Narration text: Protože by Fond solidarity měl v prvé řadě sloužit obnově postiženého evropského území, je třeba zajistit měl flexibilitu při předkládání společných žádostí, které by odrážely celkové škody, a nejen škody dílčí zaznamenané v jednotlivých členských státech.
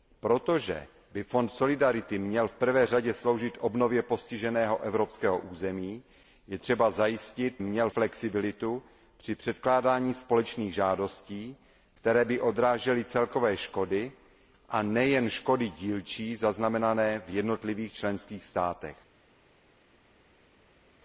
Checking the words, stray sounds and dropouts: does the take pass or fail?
pass